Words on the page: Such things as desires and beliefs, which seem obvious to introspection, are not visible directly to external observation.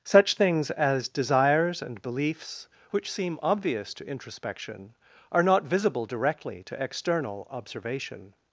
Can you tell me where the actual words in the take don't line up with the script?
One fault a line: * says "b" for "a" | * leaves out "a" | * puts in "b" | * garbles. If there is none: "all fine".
all fine